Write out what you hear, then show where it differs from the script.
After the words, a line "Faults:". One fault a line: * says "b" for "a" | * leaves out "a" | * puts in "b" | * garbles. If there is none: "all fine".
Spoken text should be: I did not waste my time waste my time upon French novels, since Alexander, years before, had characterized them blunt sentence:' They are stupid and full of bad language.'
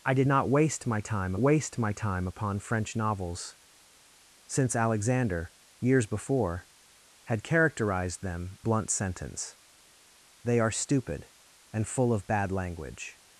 I did not waste my time waste my time upon French novels, since Alexander, years before, had characterized them blunt sentence:' They are stupid and full of bad language.'
Faults:
all fine